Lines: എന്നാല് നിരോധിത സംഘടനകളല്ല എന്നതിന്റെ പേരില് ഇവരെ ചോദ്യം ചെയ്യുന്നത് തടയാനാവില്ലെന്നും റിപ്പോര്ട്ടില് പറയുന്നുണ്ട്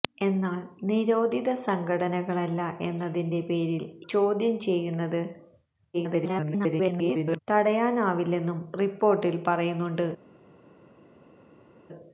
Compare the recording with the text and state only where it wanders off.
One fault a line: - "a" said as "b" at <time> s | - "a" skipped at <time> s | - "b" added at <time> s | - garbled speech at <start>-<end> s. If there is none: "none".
- "ഇവരെ" skipped at 3.9 s
- garbled speech at 5.9-7.4 s